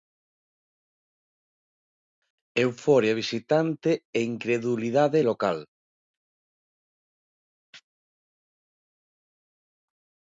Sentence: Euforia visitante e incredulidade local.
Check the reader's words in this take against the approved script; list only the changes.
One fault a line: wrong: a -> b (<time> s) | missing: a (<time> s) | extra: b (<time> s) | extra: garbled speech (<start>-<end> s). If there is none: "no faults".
no faults